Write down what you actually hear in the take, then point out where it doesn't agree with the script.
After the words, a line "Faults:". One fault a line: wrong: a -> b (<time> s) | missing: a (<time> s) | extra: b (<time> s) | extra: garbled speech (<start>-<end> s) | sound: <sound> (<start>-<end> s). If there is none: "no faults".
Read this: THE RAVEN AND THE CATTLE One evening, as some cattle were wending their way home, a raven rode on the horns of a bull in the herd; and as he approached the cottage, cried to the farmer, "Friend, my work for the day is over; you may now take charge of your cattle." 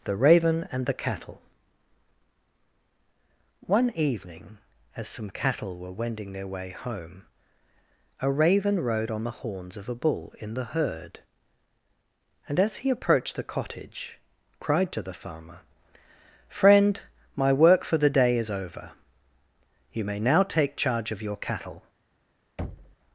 THE RAVEN AND THE CATTLE One evening, as some cattle were wending their way home, a raven rode on the horns of a bull in the herd; and as he approached the cottage, cried to the farmer, "Friend, my work for the day is over; you may now take charge of your cattle."
Faults:
sound: thud (22.6-23.0 s)